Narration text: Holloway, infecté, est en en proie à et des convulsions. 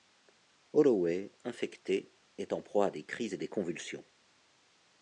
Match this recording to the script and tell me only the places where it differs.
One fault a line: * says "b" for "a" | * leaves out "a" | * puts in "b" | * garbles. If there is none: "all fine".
* leaves out "en"
* puts in "des crises"